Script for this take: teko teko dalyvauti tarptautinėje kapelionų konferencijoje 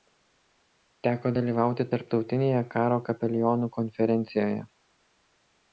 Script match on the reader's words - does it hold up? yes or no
no